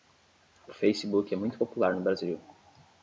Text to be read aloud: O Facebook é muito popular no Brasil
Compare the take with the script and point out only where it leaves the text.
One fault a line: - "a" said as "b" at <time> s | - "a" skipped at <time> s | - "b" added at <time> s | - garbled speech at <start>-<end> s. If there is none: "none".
none